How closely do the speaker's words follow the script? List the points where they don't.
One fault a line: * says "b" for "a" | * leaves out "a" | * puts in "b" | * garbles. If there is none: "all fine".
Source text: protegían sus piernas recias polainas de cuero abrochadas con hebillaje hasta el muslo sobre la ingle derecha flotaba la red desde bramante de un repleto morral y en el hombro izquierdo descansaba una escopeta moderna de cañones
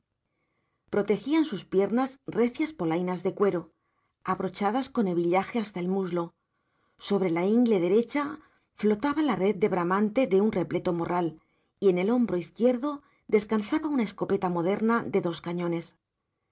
* says "de" for "desde"
* puts in "dos"